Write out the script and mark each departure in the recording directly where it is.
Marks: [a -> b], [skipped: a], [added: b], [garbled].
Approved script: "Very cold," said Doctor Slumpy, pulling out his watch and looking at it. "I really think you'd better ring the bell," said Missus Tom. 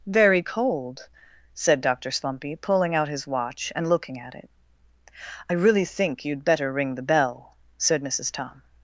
"Very cold," said Doctor Slumpy, pulling out his watch and looking at it. "I really think you'd better ring the bell," said Missus Tom.